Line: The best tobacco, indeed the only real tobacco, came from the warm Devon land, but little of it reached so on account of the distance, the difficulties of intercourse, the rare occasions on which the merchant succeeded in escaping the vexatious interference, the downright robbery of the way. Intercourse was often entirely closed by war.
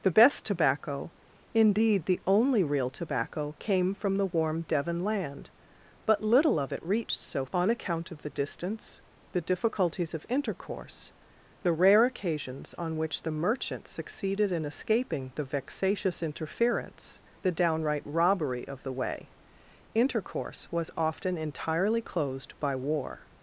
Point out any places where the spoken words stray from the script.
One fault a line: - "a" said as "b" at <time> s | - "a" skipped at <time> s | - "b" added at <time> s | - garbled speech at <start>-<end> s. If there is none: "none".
none